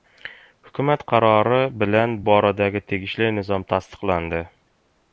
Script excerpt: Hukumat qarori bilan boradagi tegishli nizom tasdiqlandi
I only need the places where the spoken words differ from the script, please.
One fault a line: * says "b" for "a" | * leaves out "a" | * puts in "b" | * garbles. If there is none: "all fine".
all fine